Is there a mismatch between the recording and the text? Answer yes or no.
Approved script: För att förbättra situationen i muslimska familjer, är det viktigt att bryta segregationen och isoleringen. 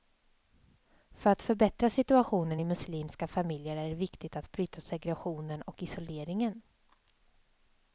no